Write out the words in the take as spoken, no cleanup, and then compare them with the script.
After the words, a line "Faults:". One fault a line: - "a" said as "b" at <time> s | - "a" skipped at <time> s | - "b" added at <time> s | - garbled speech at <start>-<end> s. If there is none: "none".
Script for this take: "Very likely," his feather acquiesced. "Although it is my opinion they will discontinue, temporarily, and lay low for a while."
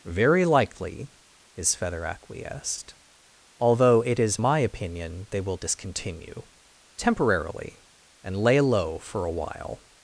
"Very likely," his feather acquiesced. "Although it is my opinion they will discontinue, temporarily, and lay low for a while."
Faults:
none